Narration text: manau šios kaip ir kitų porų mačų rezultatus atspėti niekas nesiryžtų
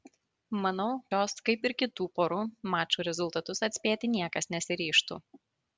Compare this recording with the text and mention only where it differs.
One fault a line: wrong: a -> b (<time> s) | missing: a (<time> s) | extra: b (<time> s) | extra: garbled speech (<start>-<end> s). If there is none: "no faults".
no faults